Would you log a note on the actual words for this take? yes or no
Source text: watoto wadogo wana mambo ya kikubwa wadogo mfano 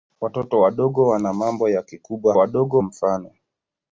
no